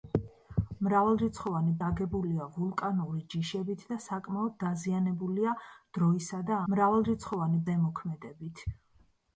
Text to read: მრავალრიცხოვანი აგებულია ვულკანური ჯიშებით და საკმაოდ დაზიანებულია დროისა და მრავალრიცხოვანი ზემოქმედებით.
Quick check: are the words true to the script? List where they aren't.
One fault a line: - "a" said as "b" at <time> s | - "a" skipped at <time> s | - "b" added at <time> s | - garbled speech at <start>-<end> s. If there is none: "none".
none